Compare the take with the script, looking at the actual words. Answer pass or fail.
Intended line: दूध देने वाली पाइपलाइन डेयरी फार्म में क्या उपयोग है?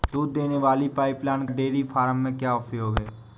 pass